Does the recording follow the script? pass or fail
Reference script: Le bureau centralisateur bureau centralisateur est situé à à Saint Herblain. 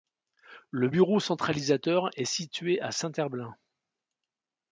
fail